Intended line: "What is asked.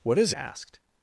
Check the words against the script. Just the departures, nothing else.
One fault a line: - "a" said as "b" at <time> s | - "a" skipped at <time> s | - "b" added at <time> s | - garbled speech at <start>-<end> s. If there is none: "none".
none